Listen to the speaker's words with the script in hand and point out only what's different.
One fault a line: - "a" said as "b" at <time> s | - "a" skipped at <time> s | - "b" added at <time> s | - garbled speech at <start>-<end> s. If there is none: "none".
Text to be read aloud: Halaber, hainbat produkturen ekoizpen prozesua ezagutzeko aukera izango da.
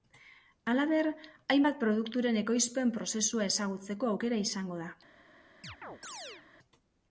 none